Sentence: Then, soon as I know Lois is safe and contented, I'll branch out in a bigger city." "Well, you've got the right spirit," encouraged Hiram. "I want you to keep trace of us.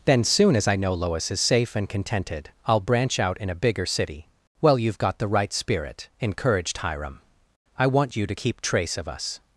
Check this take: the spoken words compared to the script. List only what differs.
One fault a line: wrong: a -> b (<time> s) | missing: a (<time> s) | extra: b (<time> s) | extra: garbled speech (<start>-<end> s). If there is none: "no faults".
no faults